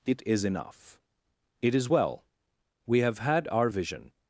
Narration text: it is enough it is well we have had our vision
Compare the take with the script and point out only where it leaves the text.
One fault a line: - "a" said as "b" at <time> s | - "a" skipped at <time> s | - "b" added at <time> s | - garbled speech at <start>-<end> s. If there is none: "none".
none